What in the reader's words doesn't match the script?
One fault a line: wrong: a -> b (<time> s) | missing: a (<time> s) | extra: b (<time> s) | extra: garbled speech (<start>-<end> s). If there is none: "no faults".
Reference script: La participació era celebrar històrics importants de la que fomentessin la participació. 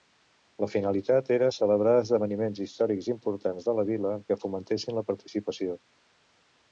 wrong: participació -> finalitat (0.8 s)
extra: esdeveniments (2.0 s)
extra: vila (3.9 s)